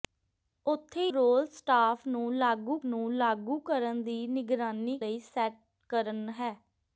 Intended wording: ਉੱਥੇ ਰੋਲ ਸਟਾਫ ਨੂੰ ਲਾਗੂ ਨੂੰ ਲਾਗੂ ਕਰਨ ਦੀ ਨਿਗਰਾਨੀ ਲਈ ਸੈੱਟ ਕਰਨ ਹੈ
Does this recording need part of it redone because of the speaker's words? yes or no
no